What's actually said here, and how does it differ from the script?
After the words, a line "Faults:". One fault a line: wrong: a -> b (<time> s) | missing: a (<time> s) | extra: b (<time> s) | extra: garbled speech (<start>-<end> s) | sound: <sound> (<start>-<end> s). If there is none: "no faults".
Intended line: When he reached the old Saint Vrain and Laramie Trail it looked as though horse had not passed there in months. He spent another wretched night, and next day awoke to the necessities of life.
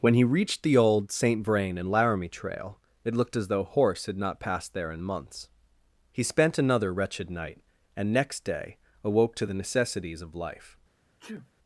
When he reached the old Saint Vrain and Laramie Trail it looked as though horse had not passed there in months. He spent another wretched night, and next day awoke to the necessities of life.
Faults:
sound: sneeze (11.2-11.5 s)